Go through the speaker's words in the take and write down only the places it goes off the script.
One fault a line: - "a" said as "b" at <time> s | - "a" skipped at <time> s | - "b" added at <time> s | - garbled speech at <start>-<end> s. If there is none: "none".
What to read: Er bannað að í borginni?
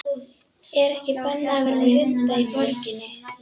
- "ekki" added at 0.9 s
- "vera með hunda" added at 1.7 s